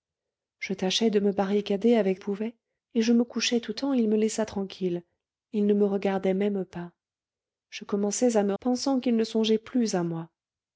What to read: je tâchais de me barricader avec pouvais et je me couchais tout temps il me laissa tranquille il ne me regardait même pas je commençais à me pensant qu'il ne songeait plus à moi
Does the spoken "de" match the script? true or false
true